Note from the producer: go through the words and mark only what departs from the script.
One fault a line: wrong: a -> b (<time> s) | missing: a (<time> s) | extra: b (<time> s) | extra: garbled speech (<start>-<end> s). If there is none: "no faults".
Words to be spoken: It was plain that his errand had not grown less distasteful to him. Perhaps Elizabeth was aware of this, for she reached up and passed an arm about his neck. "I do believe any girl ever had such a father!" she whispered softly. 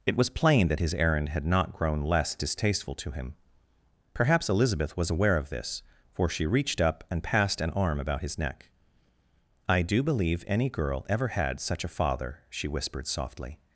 no faults